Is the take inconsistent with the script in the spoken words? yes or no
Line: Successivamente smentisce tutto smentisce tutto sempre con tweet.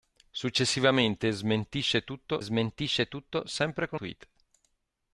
no